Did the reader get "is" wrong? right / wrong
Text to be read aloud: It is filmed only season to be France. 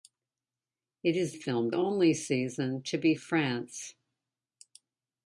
right